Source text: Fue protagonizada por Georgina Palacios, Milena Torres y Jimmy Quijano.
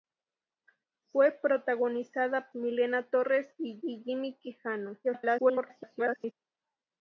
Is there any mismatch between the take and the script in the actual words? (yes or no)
yes